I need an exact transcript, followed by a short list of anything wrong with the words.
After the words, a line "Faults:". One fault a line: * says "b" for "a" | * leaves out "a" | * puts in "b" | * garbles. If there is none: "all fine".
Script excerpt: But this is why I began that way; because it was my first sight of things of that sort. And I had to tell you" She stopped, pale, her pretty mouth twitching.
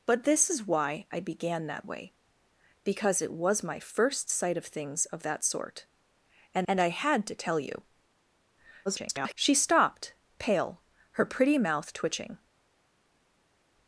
But this is why I began that way; because it was my first sight of things of that sort. And and I had to tell you" [garbled] She stopped, pale, her pretty mouth twitching.
Faults:
* puts in "and"
* garbles